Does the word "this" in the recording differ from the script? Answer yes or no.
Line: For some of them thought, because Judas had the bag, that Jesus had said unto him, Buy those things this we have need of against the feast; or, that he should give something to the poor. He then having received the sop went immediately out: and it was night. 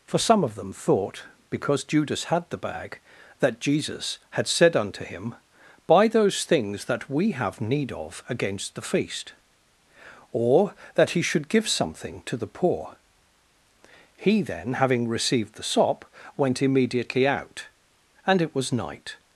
yes